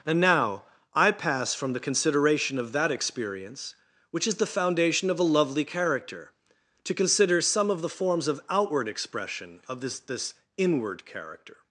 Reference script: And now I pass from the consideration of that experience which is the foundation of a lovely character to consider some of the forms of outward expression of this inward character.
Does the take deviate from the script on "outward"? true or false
false